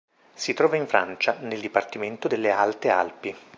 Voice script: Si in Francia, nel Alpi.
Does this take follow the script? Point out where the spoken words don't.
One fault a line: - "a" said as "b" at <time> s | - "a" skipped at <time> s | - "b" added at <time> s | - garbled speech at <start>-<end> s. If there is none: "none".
- "trova" added at 0.6 s
- "dipartimento delle Alte" added at 1.6 s